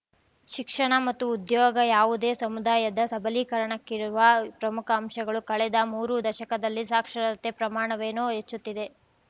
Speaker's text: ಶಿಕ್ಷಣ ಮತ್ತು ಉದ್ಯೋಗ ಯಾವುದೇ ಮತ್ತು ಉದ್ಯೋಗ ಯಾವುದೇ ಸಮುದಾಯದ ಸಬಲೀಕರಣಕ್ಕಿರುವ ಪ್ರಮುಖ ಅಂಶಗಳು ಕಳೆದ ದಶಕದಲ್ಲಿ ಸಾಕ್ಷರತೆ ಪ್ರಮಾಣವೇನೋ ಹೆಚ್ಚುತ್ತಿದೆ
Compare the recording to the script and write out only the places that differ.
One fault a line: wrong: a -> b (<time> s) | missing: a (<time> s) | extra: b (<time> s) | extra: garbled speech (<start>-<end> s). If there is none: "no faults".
missing: ಮತ್ತು ಉದ್ಯೋಗ ಯಾವುದೇ (2.3 s)
extra: ಮೂರು (5.9 s)